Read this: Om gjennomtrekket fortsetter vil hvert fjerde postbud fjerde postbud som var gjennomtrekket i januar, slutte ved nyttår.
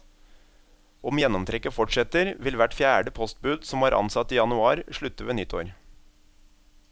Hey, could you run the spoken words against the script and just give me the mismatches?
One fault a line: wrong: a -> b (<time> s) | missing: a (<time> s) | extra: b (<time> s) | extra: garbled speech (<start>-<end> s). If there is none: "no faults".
missing: fjerde postbud (3.7 s)
wrong: gjennomtrekket -> ansatt (4.0 s)